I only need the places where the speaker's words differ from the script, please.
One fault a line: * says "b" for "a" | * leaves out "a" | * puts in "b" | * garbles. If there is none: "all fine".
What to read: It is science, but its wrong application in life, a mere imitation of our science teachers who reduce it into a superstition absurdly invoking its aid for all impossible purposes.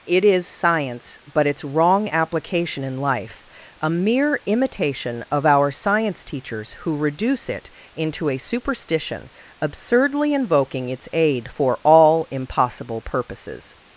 all fine